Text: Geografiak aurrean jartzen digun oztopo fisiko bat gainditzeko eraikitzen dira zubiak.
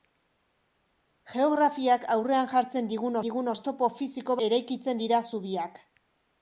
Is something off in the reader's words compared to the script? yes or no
yes